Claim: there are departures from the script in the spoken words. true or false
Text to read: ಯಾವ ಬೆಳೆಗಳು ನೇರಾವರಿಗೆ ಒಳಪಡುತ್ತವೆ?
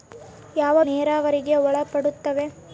true